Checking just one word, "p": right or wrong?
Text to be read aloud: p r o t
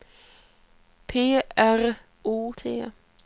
right